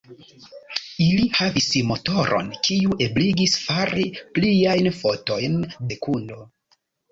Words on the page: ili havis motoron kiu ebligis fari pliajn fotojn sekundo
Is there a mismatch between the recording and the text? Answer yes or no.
no